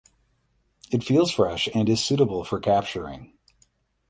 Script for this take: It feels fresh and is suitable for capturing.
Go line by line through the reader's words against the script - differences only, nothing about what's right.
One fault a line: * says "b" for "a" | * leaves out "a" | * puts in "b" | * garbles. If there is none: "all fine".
all fine